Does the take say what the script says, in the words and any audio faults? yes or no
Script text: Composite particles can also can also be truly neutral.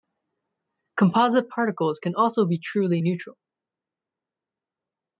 no